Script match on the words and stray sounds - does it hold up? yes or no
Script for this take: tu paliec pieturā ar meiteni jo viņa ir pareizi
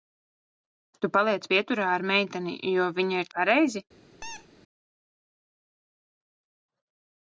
no